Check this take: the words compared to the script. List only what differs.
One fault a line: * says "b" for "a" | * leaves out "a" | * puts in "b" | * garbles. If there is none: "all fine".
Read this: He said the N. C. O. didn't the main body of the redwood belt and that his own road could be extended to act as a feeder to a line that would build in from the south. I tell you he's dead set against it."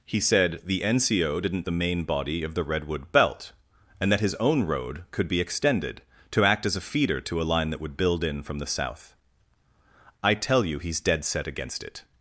all fine